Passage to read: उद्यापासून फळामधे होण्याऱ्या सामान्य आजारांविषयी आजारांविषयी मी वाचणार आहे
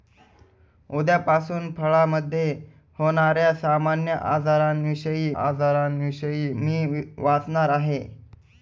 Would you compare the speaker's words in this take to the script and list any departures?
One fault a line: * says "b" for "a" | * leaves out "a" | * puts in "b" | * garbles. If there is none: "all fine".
all fine